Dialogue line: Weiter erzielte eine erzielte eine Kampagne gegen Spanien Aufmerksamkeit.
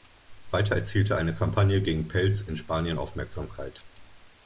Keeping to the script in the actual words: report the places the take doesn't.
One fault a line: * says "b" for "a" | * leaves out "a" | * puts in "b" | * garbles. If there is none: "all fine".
* says "Kampagne gegen Pelz in" for "erzielte eine Kampagne gegen"